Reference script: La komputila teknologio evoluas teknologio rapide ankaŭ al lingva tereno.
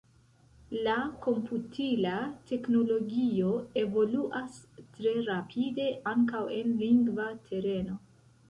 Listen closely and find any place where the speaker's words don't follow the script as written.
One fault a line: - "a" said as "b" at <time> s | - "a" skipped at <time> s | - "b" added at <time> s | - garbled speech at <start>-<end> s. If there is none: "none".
- "teknologio" said as "tre" at 5.0 s
- "al" said as "en" at 6.6 s